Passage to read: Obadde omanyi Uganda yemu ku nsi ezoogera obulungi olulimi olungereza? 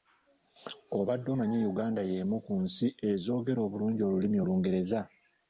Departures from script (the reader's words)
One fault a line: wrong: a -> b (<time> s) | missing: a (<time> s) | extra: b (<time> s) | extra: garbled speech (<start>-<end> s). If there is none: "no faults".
no faults